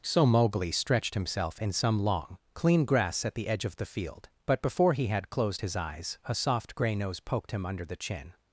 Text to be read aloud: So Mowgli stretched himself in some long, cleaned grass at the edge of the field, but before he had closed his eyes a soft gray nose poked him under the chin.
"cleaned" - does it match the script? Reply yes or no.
no